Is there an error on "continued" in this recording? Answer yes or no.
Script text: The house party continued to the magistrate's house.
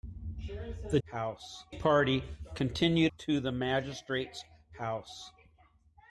no